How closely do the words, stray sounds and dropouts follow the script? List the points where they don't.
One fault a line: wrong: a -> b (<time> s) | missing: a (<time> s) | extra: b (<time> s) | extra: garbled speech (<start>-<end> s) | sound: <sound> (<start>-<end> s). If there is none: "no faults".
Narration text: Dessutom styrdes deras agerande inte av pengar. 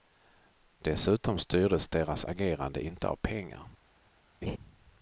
sound: laugh (4.4-4.6 s)